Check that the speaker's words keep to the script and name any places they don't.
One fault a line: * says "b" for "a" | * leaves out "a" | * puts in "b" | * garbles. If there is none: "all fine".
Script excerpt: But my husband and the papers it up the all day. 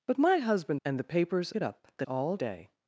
all fine